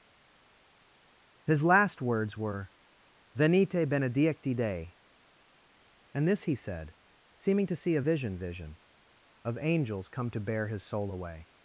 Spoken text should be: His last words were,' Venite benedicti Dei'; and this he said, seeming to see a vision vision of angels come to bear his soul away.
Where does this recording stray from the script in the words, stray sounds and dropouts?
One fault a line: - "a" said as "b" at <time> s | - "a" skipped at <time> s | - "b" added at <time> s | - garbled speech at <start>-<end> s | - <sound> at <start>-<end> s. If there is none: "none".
none